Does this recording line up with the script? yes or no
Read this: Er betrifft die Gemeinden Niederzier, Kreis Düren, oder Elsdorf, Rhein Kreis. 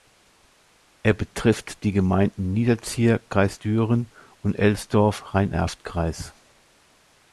no